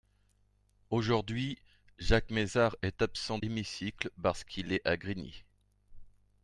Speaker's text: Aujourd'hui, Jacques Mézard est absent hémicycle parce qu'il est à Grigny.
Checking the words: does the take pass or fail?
pass